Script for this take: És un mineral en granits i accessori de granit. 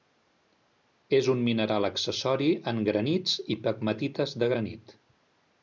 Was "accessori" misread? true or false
true